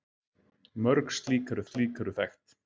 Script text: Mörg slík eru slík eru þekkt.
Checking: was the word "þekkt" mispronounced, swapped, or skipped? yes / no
no